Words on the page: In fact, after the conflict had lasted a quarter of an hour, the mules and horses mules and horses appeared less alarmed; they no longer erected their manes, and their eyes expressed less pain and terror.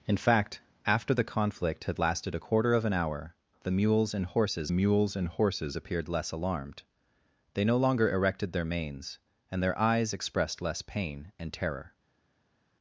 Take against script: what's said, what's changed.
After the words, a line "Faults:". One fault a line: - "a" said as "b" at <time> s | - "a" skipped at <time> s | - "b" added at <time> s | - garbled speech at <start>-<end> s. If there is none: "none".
In fact, after the conflict had lasted a quarter of an hour, the mules and horses mules and horses appeared less alarmed; they no longer erected their manes, and their eyes expressed less pain and terror.
Faults:
none